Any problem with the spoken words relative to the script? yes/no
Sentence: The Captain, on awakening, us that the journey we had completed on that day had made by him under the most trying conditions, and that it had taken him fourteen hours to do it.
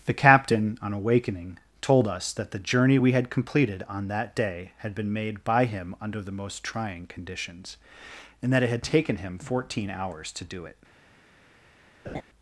yes